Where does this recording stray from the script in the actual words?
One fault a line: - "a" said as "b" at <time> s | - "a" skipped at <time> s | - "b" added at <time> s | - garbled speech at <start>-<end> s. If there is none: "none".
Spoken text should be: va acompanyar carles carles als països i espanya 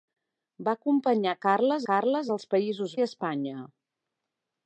none